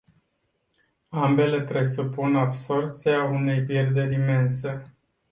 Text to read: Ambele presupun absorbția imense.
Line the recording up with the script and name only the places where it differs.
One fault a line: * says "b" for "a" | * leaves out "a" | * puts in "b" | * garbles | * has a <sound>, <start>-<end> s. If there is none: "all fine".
* puts in "unei pierderi"